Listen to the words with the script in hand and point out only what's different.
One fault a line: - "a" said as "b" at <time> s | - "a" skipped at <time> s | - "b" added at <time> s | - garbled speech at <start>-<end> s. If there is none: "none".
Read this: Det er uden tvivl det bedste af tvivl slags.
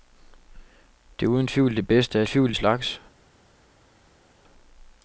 none